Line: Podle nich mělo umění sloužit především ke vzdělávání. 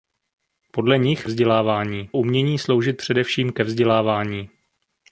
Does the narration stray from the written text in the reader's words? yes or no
yes